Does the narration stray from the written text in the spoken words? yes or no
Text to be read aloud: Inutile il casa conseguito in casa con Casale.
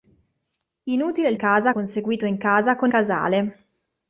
no